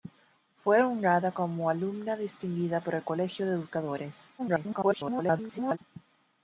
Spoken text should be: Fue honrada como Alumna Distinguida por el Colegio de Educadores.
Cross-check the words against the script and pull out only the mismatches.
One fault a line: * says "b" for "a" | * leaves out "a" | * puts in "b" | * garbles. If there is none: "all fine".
* garbles